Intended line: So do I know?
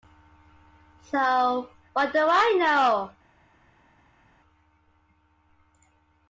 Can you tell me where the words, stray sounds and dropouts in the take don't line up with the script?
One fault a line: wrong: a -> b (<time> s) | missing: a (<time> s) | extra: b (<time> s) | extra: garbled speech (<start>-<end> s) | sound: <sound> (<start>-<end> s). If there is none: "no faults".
extra: what (1.9 s)